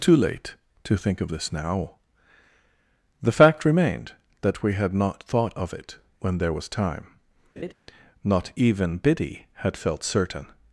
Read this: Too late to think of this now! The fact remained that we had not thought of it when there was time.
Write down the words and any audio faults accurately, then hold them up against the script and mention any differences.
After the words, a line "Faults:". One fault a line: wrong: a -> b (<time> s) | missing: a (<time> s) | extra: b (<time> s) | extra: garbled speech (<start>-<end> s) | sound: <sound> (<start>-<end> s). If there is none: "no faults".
Too late to think of this now! The fact remained that we had not thought of it when there was time. Not even Biddy had felt certain
Faults:
sound: laugh (7.6-7.7 s)
extra: Not even Biddy had felt certain (8.2 s)